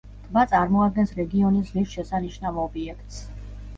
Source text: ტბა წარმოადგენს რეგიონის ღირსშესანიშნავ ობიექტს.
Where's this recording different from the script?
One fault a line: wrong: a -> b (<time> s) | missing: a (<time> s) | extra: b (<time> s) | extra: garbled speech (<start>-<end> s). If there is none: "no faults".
no faults